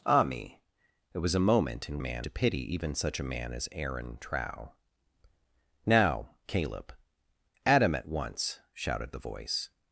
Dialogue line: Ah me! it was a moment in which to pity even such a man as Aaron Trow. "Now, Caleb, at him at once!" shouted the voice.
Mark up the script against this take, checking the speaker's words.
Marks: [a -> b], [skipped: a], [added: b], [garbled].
Ah me! it was a moment in [which -> man] to pity even such a man as Aaron Trow. "Now, Caleb, at him at once!" shouted the voice.